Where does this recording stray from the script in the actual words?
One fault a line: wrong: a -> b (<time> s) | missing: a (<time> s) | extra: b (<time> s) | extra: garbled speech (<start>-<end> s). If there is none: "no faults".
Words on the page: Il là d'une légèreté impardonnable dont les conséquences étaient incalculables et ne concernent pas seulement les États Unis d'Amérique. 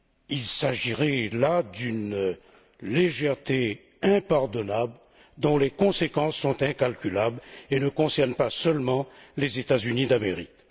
extra: s'agirait (0.5 s)
wrong: étaient -> sont (6.4 s)